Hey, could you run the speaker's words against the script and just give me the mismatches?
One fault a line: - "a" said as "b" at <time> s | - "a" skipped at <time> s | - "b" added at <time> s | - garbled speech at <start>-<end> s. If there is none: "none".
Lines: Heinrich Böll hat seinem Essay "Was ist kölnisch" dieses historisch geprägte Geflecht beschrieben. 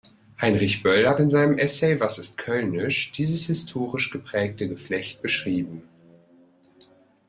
- "in" added at 1.2 s